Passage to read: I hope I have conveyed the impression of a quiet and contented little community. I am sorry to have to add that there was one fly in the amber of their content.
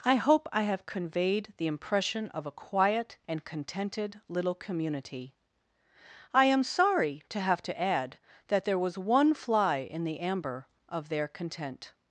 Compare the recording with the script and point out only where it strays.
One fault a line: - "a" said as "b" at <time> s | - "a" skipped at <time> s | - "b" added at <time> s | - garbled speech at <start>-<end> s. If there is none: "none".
none